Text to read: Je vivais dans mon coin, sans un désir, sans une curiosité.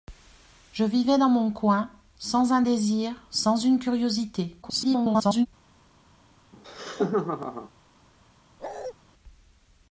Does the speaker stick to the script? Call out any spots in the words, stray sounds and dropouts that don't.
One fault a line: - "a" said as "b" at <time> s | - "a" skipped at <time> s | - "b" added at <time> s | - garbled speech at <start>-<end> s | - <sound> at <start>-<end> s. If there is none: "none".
- garbled speech at 4.6-5.5 s
- laugh at 6.5-7.7 s
- bark at 8.6-8.9 s